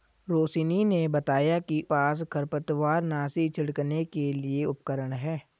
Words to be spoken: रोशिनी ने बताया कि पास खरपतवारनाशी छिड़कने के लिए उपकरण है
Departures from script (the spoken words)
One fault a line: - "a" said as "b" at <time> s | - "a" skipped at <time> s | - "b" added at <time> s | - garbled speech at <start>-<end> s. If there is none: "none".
none